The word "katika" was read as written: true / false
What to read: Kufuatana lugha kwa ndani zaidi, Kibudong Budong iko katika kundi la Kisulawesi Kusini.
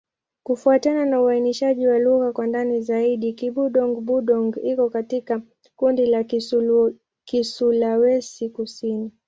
true